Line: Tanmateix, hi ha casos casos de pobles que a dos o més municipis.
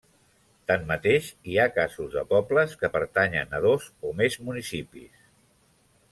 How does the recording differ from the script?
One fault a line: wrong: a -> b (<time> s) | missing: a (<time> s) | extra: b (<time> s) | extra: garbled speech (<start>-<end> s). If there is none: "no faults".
missing: casos (2.1 s)
extra: pertanyen (2.9 s)